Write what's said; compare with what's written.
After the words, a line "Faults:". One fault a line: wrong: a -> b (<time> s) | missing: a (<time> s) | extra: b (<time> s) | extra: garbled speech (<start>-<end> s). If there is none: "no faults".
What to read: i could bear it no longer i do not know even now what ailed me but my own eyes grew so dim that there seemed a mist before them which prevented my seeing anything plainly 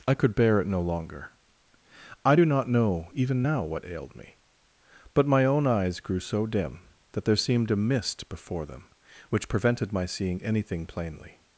i could bear it no longer i do not know even now what ailed me but my own eyes grew so dim that there seemed a mist before them which prevented my seeing anything plainly
Faults:
no faults